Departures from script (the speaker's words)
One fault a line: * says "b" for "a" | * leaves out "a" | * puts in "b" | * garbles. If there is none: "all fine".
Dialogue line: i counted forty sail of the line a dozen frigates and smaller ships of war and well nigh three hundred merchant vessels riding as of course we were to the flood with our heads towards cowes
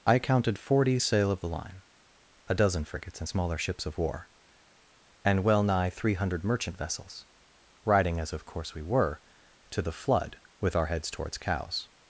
all fine